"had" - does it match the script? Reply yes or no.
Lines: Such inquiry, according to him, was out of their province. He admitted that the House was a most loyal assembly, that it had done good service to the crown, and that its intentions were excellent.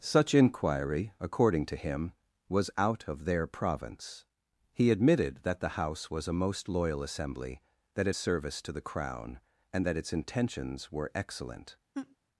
no